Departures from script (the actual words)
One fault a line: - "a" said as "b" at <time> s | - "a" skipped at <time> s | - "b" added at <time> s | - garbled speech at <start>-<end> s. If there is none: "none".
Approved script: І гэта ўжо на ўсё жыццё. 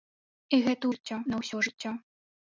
- "ўжо" said as "жыццё" at 0.9 s